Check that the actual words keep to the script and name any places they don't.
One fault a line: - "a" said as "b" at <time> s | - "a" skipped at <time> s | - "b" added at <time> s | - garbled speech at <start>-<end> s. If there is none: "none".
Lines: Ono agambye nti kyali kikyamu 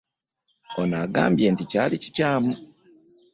none